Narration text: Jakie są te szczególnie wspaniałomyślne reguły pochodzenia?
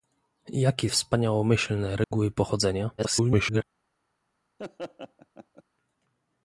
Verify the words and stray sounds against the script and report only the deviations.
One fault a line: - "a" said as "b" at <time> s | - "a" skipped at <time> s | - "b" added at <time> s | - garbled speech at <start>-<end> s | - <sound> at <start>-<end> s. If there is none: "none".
- "są te szczególnie" skipped at 0.9 s
- dropout at 2.0-2.1 s
- garbled speech at 3.0-3.6 s
- laugh at 4.6-5.6 s